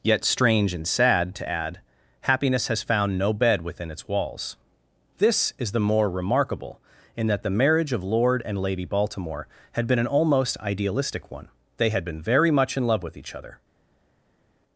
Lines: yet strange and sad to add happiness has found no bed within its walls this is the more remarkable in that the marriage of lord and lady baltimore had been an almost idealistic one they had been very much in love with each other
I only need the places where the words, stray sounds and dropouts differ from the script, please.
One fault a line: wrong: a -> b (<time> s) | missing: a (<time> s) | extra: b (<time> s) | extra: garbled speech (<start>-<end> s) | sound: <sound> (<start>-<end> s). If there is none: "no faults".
no faults